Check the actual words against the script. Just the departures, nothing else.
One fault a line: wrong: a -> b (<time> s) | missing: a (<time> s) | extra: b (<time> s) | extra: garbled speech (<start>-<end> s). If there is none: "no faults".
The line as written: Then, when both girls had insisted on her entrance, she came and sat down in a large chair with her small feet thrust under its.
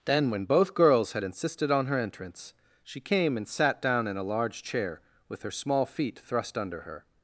wrong: its -> her (6.8 s)